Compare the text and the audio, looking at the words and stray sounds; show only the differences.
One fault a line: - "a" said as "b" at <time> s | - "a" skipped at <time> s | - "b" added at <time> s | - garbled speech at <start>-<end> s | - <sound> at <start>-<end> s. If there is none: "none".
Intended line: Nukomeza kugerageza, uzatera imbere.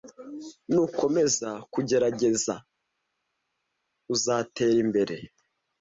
none